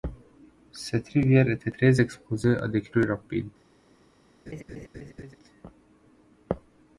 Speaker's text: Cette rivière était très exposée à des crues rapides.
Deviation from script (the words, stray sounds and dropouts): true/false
true